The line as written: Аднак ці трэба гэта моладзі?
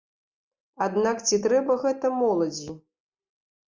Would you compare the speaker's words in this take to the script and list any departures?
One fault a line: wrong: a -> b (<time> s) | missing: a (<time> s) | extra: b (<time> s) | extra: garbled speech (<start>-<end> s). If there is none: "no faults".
no faults